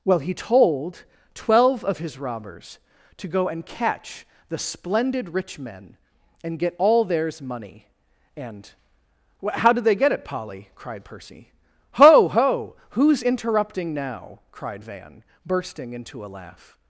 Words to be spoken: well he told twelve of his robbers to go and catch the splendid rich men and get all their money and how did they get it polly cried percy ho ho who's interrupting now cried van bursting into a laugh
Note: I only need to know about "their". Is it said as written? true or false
false